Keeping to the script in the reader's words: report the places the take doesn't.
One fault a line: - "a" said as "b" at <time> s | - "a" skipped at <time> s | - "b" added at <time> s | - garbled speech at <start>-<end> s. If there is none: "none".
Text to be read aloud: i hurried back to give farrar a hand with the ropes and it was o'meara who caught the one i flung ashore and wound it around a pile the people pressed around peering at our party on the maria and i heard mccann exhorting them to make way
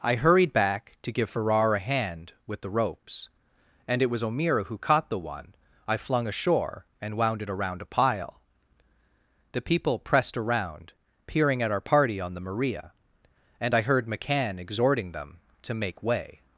none